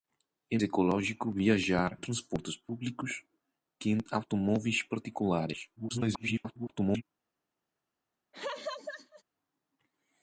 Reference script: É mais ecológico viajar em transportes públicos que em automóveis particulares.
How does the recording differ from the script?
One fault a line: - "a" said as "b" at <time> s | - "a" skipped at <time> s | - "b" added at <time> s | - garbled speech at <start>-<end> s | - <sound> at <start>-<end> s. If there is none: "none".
- "mais" skipped at 0.6 s
- "em" skipped at 2.0 s
- garbled speech at 5.8-7.0 s
- laugh at 8.3-9.2 s